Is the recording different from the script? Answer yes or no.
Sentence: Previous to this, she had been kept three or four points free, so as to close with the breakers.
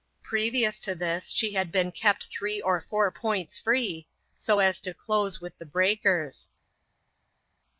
no